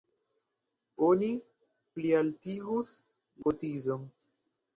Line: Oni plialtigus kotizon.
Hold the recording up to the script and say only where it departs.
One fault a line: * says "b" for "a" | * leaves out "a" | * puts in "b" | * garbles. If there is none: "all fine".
all fine